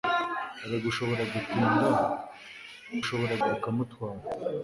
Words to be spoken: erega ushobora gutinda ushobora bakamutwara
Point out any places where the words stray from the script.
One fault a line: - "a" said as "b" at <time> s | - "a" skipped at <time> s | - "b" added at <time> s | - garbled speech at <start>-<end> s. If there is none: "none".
none